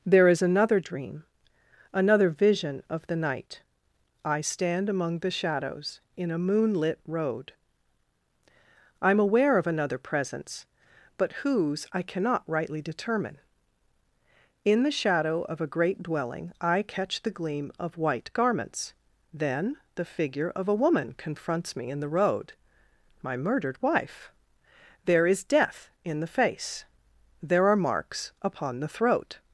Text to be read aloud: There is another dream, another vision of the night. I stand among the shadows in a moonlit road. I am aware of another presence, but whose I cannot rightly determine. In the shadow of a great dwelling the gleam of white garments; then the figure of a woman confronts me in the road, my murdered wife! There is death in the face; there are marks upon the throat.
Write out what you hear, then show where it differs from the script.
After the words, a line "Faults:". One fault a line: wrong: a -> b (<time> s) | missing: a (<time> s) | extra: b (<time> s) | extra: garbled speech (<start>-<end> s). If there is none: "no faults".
There is another dream, another vision of the night. I stand among the shadows in a moonlit road. I am aware of another presence, but whose I cannot rightly determine. In the shadow of a great dwelling I catch the gleam of white garments; then the figure of a woman confronts me in the road, my murdered wife! There is death in the face; there are marks upon the throat.
Faults:
extra: I catch (16.6 s)